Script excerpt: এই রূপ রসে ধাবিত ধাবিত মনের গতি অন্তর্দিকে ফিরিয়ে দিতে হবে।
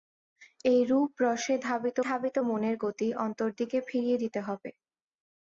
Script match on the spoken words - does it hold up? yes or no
yes